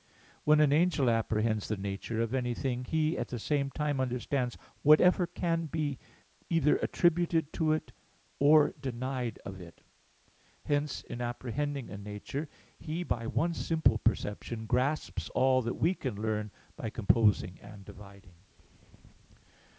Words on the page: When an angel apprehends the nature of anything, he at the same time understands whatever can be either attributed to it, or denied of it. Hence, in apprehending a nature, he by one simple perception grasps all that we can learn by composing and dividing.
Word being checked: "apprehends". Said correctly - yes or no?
yes